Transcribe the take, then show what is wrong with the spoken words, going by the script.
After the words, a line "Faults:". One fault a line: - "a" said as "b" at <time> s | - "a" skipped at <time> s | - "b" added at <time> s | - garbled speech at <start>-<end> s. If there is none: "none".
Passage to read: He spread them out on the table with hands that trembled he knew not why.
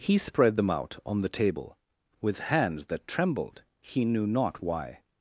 He spread them out on the table with hands that trembled he knew not why.
Faults:
none